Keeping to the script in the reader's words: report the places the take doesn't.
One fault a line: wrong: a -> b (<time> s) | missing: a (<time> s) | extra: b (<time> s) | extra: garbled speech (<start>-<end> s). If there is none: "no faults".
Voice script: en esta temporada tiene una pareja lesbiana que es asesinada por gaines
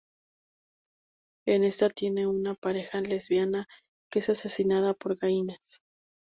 missing: temporada (1.9 s)